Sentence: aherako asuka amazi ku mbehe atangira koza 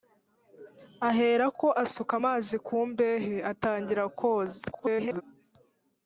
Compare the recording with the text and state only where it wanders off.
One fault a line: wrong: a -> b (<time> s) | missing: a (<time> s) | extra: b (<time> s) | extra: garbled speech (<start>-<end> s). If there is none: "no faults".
extra: garbled speech (4.7-5.2 s)